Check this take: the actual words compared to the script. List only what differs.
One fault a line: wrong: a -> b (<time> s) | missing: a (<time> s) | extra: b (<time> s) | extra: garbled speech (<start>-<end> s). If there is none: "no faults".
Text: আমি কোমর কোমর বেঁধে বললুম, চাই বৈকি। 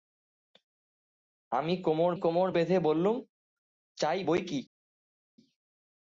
no faults